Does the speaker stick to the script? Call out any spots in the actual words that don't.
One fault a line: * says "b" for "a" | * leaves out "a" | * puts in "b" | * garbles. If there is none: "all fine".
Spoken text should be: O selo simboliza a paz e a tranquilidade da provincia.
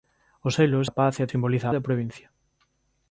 * leaves out "simboliza"
* says "simboliza" for "tranquilidade"